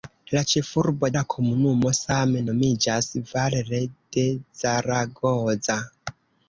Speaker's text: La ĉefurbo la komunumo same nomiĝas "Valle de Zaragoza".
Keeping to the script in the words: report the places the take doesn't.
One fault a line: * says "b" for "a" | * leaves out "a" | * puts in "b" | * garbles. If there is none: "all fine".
all fine